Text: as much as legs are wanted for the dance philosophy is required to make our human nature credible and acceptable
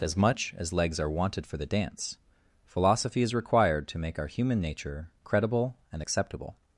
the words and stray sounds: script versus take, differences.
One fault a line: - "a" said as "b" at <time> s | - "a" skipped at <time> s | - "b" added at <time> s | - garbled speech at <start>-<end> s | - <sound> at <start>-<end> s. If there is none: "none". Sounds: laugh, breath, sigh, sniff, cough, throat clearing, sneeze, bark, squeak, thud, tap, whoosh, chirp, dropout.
none